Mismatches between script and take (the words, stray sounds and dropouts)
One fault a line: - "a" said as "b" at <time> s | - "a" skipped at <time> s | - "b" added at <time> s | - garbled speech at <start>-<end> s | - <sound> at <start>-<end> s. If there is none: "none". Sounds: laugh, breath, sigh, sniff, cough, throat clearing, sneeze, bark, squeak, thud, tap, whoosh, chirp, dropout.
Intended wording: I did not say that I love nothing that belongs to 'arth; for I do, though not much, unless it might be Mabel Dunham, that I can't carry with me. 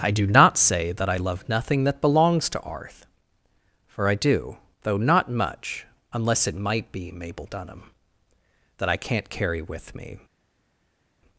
- "did" said as "do" at 0.1 s